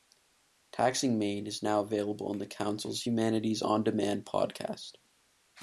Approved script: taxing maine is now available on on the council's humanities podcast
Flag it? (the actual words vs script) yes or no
yes